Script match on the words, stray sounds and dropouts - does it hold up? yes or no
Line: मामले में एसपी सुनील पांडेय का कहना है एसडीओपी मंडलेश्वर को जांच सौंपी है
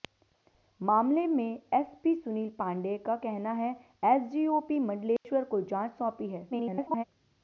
no